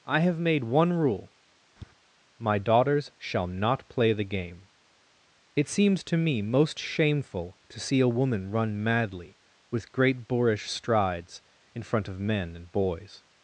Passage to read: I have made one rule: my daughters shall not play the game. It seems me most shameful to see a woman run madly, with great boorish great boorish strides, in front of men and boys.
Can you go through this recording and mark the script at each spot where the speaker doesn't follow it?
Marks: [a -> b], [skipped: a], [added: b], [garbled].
I have made one rule: my daughters shall not play the game. It seems [added: to] me most shameful to see a woman run madly, with great boorish [skipped: great boorish] strides, in front of men and boys.